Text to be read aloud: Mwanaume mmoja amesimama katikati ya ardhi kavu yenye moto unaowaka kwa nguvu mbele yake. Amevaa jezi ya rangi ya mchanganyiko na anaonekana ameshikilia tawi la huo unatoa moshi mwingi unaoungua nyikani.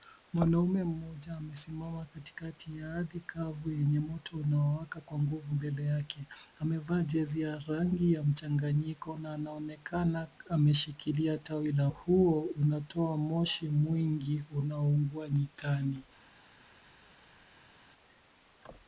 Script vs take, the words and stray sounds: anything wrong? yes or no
no